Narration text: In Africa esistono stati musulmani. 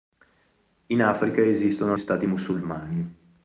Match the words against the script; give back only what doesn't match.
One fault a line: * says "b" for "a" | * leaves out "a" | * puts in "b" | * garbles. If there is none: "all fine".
all fine